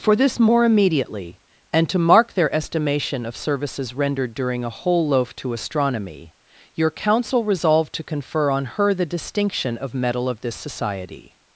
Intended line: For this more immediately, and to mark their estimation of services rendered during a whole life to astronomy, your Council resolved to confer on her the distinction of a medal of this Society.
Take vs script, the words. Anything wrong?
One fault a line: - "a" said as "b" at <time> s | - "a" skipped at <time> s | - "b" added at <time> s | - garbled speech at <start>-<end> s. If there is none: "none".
- "life" said as "loaf" at 5.1 s
- "a" skipped at 9.9 s